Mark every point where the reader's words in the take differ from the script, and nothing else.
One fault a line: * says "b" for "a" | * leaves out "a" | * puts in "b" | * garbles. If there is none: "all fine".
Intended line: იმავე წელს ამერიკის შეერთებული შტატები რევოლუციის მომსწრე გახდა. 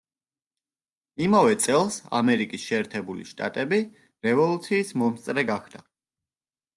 all fine